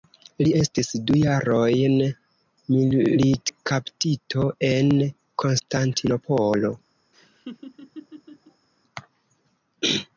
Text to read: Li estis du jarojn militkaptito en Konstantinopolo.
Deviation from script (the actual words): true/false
false